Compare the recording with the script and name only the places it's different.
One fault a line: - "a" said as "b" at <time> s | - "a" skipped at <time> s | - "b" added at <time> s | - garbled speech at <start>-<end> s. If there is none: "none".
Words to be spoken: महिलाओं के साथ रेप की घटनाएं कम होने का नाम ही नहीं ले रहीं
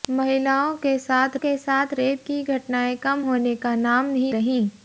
- "के साथ" added at 1.3 s
- "नहीं ले" skipped at 4.3 s